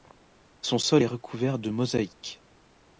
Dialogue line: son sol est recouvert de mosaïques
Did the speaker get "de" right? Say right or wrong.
right